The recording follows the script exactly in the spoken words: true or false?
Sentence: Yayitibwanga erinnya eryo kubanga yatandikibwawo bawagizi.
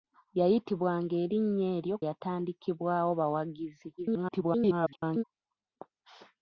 false